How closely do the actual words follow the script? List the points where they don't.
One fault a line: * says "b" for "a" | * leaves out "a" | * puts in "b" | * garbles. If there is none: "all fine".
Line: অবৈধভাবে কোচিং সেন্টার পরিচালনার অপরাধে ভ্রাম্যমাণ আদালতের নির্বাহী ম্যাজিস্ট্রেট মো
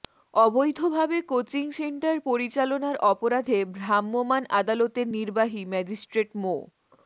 all fine